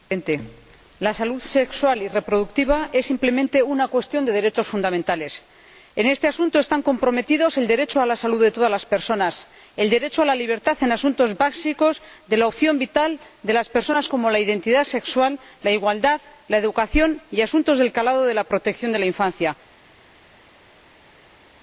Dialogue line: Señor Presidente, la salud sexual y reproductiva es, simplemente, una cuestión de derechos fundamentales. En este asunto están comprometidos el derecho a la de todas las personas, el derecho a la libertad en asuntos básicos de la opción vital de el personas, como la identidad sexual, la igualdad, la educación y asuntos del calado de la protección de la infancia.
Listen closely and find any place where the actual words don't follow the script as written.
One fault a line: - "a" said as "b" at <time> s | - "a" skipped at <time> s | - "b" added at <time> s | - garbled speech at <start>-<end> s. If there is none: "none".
- "salud" added at 8.2 s
- "el" said as "las" at 13.5 s